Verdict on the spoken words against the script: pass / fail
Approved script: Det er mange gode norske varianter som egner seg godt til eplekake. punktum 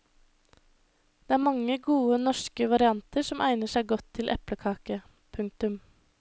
pass